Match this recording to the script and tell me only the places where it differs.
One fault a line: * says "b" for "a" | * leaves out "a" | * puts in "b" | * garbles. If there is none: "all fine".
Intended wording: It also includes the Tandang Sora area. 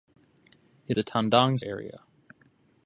* leaves out "also includes"
* leaves out "Sora"